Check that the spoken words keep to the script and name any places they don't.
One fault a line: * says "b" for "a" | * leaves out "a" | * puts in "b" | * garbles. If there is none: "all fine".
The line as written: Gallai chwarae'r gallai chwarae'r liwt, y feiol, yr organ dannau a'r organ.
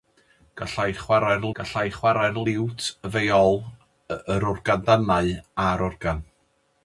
all fine